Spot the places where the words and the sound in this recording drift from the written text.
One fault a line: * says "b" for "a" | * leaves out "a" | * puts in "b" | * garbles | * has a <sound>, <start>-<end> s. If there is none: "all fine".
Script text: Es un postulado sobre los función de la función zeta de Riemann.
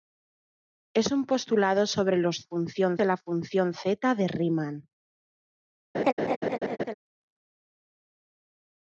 * has a laugh, 5.9-6.9 s